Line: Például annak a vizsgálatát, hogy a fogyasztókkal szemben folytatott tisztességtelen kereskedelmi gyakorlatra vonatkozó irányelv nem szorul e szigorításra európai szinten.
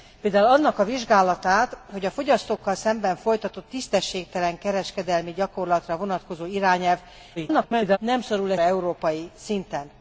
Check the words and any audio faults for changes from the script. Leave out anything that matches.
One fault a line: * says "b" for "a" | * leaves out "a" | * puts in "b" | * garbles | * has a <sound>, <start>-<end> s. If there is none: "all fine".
* garbles
* leaves out "szigorításra"